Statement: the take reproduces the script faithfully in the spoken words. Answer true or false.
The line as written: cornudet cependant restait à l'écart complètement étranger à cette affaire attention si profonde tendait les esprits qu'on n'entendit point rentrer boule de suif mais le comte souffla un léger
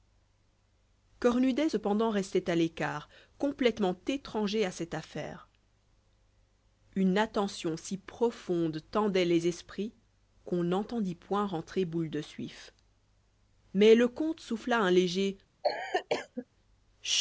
false